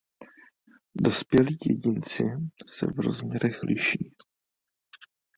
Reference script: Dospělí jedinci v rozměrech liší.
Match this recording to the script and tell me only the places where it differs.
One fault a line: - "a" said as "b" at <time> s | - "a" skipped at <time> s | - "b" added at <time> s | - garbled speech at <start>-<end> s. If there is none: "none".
- "se" added at 2.7 s